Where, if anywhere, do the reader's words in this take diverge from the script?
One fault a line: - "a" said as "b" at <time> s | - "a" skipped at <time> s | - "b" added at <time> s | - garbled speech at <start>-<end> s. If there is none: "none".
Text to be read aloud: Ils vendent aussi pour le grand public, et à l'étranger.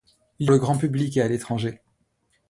- "vendent aussi pour" skipped at 0.5 s